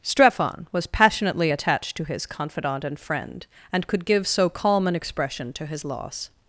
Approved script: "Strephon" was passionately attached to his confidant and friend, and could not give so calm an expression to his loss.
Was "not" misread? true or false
true